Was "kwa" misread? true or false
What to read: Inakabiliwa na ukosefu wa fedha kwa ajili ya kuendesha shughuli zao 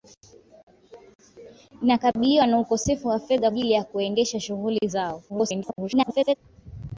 true